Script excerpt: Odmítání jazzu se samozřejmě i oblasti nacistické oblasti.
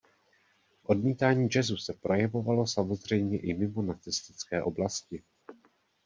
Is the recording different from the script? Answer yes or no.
yes